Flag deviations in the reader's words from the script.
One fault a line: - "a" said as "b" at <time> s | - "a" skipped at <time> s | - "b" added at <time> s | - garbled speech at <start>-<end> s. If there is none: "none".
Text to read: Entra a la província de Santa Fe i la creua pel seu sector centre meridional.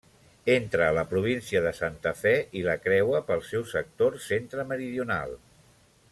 none